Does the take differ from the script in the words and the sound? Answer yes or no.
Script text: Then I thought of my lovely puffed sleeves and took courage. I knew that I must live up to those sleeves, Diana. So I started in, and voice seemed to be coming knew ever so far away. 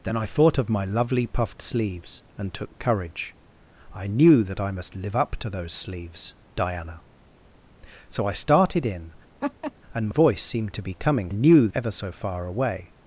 yes